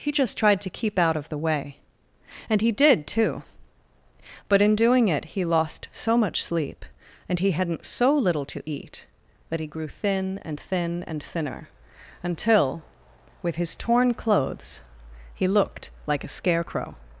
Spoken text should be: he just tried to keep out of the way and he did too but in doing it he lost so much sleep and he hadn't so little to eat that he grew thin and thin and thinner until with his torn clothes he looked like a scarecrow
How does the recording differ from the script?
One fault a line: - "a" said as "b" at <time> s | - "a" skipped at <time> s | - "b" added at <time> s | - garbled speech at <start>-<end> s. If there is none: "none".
none